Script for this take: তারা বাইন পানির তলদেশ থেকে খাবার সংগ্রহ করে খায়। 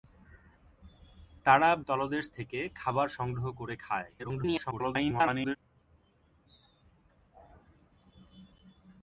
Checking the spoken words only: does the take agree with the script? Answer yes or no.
no